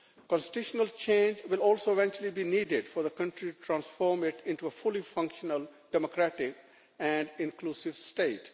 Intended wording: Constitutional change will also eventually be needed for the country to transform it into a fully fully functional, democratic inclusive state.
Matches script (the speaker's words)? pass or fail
fail